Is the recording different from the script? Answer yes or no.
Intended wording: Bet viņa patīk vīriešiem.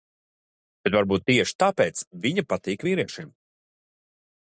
yes